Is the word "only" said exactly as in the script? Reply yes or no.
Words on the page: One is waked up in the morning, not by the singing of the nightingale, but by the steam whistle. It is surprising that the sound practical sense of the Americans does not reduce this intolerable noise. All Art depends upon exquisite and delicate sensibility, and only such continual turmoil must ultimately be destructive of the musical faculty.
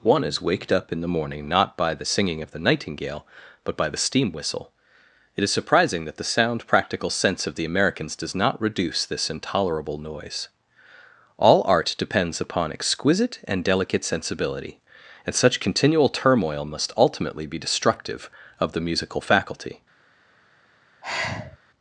no